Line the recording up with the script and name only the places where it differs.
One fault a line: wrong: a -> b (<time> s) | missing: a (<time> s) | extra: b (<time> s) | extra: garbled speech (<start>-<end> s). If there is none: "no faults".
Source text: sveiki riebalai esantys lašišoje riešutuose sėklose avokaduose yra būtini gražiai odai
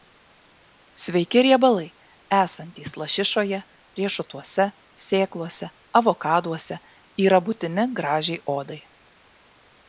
no faults